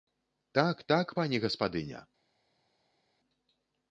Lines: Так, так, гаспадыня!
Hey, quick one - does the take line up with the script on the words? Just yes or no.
no